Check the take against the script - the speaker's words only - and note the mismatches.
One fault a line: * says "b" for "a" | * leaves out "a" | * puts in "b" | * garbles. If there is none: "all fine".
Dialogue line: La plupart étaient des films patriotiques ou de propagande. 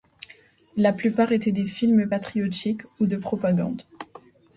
all fine